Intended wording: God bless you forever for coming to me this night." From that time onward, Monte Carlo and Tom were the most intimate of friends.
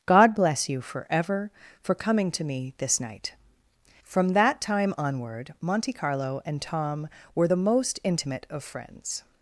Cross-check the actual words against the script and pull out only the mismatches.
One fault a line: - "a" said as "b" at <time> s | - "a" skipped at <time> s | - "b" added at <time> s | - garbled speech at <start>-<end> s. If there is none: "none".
none